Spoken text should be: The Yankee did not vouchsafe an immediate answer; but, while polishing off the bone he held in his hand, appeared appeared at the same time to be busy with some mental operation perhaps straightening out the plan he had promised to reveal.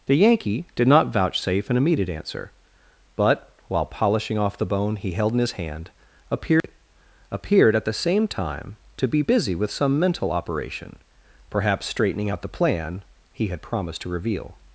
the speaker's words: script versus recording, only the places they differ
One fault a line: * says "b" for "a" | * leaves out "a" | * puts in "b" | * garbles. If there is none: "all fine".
all fine